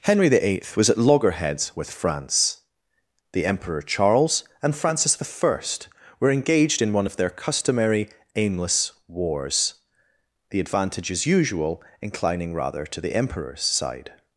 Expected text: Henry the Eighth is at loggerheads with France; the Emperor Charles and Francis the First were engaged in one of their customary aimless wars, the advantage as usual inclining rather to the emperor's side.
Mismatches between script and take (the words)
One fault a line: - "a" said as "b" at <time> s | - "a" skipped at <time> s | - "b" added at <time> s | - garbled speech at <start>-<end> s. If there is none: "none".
- "is" said as "was" at 0.8 s